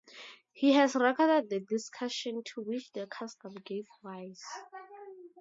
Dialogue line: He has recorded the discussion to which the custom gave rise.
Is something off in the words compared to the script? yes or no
no